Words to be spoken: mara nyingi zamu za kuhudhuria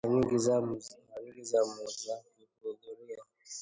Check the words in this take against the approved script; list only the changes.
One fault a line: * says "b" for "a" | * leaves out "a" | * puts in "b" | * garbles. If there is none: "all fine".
all fine